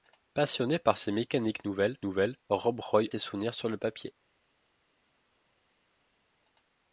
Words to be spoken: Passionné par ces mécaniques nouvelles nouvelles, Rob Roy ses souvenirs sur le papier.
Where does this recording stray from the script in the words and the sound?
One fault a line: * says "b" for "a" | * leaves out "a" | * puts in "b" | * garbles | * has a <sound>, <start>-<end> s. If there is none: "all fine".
all fine